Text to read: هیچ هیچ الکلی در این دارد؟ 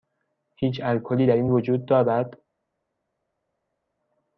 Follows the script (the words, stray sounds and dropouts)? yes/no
no